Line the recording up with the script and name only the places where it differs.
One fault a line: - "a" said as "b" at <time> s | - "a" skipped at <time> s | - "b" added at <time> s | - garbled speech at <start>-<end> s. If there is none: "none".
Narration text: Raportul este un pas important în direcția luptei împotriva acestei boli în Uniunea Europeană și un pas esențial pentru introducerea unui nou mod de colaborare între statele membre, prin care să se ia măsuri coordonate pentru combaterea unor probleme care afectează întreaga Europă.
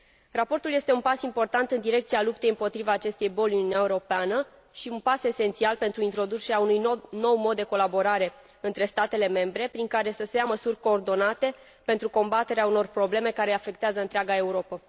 none